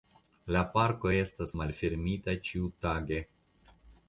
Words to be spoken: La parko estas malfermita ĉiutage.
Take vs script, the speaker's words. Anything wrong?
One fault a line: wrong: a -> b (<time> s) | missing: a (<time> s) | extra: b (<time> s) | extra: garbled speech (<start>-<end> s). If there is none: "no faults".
no faults